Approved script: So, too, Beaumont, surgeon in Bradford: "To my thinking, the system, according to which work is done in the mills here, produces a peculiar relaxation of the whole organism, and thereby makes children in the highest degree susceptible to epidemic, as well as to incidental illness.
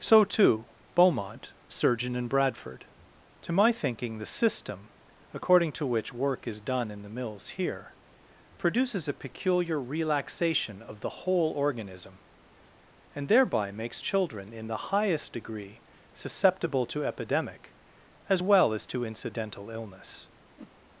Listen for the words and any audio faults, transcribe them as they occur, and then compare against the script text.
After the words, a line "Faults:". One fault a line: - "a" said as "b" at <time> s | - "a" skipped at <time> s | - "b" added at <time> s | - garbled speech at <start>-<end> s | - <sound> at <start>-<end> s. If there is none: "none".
So, too, Beaumont, surgeon in Bradford: "To my thinking, the system, according to which work is done in the mills here, produces a peculiar relaxation of the whole organism, and thereby makes children in the highest degree susceptible to epidemic, as well as to incidental illness.
Faults:
- whoosh at 20.6-20.7 s